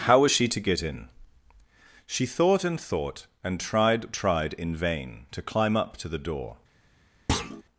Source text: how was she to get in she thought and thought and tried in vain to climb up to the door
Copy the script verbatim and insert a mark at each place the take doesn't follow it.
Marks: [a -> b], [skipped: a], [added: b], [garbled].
how was she to get in she thought and thought and tried [added: tried] in vain to climb up to the door